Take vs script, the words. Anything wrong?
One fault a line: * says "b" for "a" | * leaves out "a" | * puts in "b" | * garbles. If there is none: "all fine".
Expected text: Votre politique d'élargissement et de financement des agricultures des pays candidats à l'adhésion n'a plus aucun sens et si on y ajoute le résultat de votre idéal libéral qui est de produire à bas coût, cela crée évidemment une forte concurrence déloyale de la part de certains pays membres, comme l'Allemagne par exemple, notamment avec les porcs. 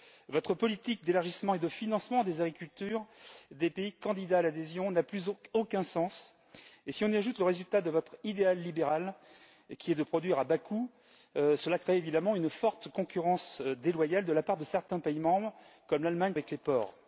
* leaves out "par exemple notamment"